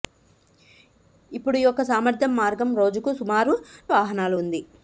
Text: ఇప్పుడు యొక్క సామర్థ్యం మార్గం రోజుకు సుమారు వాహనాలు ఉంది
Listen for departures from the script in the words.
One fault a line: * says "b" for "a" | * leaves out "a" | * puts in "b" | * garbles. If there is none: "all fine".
all fine